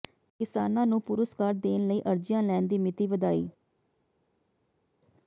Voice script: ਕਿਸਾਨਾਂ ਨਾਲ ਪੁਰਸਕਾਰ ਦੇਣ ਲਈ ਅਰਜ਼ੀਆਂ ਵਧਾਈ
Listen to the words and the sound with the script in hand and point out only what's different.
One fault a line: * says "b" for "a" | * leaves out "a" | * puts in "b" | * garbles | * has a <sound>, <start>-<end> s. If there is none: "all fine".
* says "ਨੂੰ" for "ਨਾਲ"
* puts in "ਲੈਣ ਦੀ ਮਿਤੀ"